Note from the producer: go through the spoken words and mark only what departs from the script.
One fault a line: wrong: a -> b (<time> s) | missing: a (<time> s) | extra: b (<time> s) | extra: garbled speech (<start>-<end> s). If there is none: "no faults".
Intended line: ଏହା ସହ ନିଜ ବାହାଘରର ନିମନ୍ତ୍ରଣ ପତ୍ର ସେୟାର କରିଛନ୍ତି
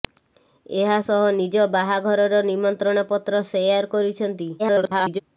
extra: garbled speech (4.6-5.2 s)